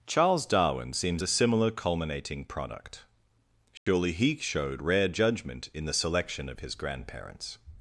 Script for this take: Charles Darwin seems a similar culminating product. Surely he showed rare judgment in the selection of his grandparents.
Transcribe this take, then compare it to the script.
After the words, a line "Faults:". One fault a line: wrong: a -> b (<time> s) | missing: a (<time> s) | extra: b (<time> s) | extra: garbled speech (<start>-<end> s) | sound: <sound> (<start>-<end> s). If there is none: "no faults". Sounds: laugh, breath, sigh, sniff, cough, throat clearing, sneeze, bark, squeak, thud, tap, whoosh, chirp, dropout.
Charles Darwin seems a similar culminating product. Surely he showed rare judgment in the selection of his grandparents.
Faults:
sound: dropout (3.8-3.9 s)